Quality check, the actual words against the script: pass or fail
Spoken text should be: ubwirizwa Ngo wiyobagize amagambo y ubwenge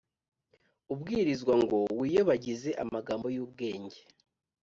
pass